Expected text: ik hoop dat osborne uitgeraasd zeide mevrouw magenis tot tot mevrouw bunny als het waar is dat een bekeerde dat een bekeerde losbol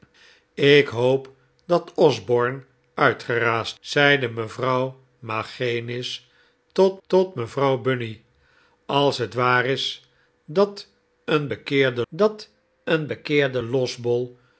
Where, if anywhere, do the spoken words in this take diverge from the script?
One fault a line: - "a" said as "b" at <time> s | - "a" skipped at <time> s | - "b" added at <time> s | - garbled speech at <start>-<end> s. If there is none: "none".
none